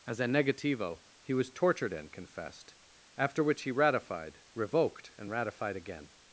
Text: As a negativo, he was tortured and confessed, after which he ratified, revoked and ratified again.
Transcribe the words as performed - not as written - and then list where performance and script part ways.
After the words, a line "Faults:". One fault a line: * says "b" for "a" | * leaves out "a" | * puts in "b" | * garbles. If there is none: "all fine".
As a negativo, he was tortured and confessed, after which he ratified, revoked and ratified again.
Faults:
all fine